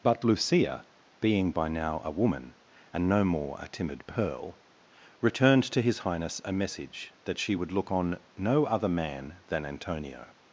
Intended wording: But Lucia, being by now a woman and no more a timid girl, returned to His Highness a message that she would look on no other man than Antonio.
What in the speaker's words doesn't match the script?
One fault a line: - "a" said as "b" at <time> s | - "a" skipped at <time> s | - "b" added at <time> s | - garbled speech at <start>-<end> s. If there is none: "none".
- "girl" said as "pearl" at 4.1 s